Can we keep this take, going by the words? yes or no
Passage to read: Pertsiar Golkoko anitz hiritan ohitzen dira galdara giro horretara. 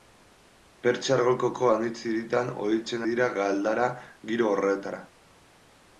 yes